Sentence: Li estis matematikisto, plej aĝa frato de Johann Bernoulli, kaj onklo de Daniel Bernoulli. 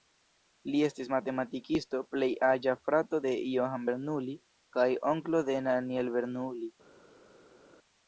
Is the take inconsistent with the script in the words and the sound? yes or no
no